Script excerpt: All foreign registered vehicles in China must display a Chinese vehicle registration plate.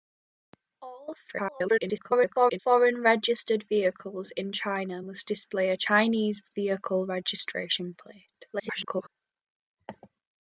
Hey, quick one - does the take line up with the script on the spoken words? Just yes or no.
no